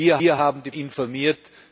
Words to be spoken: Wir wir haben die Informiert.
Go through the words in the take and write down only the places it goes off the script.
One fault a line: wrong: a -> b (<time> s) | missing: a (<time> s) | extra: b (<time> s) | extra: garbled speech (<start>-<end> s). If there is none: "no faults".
no faults